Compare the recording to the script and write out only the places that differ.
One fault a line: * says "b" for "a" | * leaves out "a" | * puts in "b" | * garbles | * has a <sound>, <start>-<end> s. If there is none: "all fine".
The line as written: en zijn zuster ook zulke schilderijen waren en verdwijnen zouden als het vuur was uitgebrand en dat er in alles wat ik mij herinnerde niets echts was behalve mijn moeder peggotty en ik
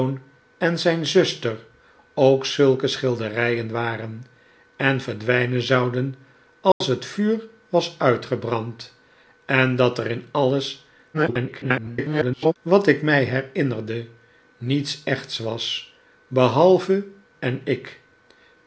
* has a dropout, 6.7-6.8 s
* garbles
* leaves out "mijn moeder peggotty"